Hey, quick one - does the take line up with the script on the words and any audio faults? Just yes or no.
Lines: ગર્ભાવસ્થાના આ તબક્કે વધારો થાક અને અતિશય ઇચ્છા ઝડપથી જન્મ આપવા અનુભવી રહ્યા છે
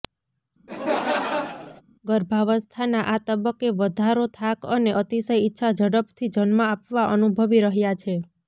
no